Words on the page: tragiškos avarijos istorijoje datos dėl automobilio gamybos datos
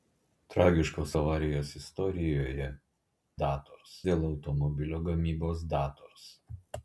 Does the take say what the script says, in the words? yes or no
yes